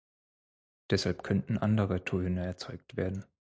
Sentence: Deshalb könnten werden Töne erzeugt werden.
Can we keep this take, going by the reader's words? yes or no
no